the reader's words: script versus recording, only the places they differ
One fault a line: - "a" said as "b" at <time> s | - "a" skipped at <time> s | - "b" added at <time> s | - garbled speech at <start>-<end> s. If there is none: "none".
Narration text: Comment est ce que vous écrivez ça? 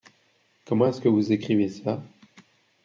none